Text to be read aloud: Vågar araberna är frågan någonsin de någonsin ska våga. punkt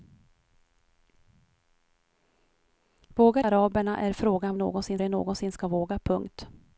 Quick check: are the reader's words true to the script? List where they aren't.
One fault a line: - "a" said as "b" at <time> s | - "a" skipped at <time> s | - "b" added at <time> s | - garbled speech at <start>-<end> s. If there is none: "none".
none